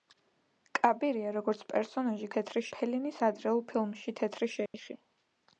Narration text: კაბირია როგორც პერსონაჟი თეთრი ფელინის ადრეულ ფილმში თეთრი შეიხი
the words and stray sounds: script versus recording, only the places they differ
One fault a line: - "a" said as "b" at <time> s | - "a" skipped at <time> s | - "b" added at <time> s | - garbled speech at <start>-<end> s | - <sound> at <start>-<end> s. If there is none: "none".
- dropout at 4.7-4.7 s